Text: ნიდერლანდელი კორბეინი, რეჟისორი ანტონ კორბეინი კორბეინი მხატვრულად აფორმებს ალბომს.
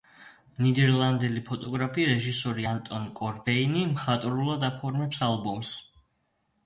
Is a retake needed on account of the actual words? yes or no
yes